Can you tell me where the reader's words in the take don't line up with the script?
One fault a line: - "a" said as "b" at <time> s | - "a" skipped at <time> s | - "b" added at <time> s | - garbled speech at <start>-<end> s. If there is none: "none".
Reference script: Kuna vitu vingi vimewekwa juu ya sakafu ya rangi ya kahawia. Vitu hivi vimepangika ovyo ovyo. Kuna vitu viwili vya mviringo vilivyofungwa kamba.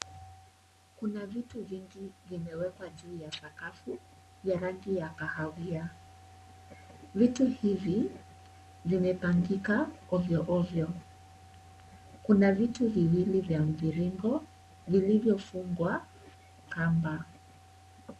none